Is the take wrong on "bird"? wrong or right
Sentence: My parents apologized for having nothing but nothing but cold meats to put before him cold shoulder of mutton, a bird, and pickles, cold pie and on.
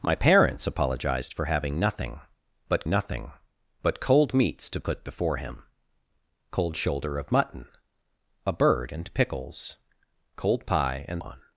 right